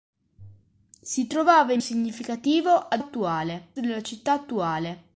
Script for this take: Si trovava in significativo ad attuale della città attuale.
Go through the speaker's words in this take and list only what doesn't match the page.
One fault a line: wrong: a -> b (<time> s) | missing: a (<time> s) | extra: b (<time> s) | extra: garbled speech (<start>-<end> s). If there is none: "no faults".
no faults